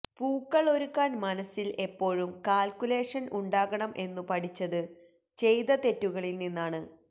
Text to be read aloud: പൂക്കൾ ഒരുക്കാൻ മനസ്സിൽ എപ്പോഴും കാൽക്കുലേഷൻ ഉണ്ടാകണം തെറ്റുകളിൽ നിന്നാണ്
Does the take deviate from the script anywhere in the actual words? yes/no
yes